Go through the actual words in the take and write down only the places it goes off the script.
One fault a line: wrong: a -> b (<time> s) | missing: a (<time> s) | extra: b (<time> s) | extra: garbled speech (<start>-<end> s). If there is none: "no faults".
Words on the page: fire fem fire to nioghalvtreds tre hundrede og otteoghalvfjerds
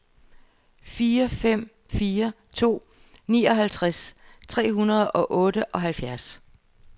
no faults